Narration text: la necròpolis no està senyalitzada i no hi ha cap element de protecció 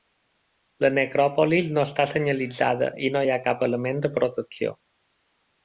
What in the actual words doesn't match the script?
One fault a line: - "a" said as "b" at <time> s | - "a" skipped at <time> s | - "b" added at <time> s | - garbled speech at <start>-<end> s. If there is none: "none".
none